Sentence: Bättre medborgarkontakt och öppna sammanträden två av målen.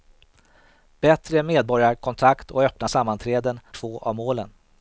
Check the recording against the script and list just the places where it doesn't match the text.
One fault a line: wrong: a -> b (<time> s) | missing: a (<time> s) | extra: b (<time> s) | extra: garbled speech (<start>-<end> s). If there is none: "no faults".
no faults